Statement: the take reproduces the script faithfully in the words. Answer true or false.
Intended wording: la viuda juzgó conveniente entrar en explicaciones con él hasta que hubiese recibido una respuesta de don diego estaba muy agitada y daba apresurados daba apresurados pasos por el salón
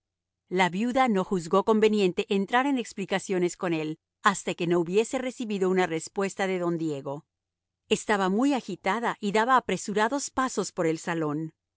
false